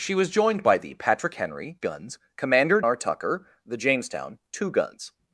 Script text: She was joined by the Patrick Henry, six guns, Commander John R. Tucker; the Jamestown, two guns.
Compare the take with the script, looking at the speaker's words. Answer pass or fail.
fail